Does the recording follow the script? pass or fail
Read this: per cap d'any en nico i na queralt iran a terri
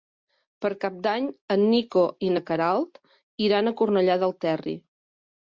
fail